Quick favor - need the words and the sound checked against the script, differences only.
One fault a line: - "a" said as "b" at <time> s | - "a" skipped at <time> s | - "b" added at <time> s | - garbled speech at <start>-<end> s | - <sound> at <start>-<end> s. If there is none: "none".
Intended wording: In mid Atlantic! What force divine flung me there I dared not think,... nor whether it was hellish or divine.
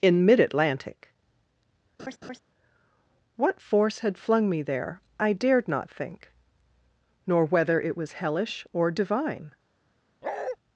- laugh at 2.0-2.4 s
- "divine" said as "had" at 4.0 s
- bark at 10.2-10.6 s